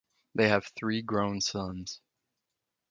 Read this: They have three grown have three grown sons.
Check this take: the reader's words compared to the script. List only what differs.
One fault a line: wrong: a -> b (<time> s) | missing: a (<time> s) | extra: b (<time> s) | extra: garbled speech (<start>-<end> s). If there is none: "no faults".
missing: have three grown (1.4 s)